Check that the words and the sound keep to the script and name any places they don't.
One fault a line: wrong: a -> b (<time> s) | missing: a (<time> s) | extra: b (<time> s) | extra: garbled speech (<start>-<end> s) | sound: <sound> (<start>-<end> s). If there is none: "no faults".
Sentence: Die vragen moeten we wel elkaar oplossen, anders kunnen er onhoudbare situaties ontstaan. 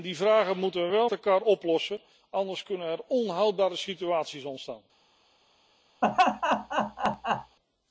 sound: laugh (6.0-7.6 s)